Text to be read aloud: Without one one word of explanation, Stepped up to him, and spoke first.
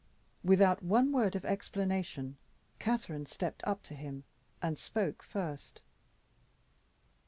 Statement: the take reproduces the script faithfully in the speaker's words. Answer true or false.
false